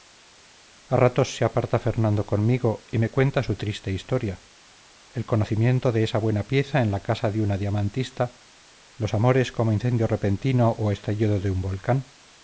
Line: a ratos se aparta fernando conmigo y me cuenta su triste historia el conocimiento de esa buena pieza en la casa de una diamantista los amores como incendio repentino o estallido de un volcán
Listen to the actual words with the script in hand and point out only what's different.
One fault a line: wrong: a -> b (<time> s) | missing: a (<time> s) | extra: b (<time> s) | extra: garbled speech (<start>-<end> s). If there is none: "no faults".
no faults